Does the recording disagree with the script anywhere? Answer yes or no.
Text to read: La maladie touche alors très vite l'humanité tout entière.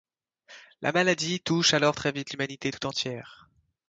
no